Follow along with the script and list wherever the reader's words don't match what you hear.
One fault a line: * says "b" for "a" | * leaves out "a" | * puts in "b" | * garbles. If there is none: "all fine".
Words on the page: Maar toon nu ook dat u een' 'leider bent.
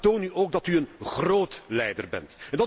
* puts in "groot"